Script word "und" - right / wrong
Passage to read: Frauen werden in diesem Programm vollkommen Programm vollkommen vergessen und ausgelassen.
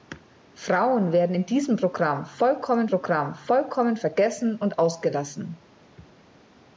right